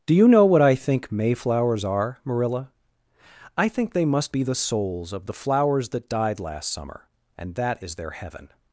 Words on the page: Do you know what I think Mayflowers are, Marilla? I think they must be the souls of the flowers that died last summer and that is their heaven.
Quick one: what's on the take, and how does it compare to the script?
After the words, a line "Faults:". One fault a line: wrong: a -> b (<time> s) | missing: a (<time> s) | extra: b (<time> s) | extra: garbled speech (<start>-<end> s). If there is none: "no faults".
Do you know what I think Mayflowers are, Marilla? I think they must be the souls of the flowers that died last summer and that is their heaven.
Faults:
no faults